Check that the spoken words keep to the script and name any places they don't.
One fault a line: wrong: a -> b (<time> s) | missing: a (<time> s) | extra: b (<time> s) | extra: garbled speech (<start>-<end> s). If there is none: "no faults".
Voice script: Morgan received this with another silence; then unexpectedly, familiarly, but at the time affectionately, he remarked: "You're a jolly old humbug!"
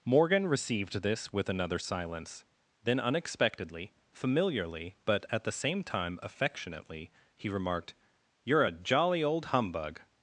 extra: same (5.5 s)